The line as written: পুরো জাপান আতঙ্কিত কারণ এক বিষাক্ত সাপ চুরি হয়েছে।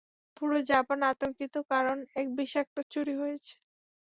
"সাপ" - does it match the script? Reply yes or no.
no